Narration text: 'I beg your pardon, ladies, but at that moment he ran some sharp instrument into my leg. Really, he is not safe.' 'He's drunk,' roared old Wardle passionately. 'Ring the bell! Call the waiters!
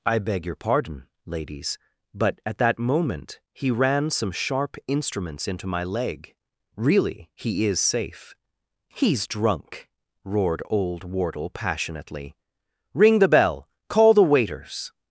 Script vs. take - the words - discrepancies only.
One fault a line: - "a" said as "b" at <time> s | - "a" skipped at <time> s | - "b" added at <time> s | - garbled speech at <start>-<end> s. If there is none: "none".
- "instrument" said as "instruments" at 4.9 s
- "not" skipped at 7.8 s